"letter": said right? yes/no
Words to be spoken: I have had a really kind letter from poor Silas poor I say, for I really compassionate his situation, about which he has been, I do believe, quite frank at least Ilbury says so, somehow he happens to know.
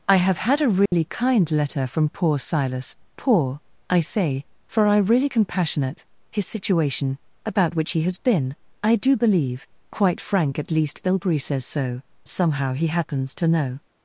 yes